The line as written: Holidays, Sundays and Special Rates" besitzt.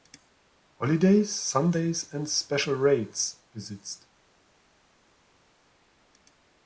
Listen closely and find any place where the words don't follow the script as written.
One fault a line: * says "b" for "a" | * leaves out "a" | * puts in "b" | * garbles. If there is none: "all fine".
all fine